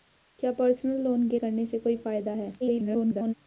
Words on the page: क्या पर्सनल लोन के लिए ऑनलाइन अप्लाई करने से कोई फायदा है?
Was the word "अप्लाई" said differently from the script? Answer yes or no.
yes